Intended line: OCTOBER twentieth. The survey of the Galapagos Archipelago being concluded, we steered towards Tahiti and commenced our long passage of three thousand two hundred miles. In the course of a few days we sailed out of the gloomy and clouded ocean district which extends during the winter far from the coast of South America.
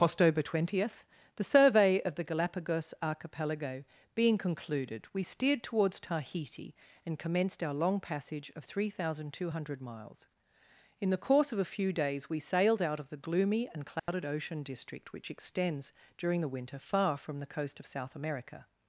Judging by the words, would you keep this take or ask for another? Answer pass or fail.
pass